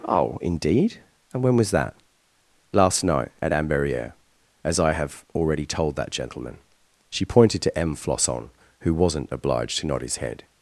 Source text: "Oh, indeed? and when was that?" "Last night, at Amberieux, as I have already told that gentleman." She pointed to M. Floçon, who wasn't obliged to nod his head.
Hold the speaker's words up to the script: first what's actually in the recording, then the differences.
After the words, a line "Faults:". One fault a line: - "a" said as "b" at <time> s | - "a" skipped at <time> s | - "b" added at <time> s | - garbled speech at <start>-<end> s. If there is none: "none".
"Oh, indeed? and when was that?" "Last night, at Amberieux, as I have already told that gentleman." She pointed to M. Floçon, who wasn't obliged to nod his head.
Faults:
none